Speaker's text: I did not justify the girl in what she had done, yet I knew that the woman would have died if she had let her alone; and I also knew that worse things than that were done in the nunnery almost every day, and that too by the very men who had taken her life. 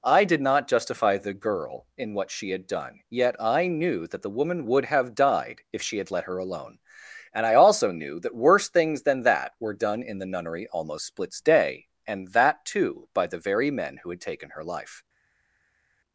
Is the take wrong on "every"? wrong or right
wrong